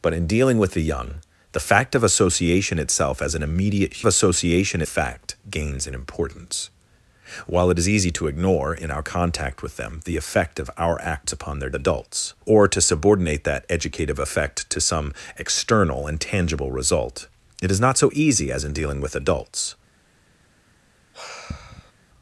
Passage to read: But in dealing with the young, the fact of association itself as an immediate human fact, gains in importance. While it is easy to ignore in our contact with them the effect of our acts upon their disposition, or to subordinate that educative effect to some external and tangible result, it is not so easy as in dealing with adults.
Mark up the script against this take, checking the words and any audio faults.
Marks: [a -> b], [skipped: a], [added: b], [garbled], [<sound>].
But in dealing with the young, the fact of association itself as an immediate [human -> association] fact, gains in importance. While it is easy to ignore in our contact with them the effect of our acts upon their [disposition, -> adults] or to subordinate that educative effect to some external and tangible result, it is not so easy as in dealing with adults. [sigh]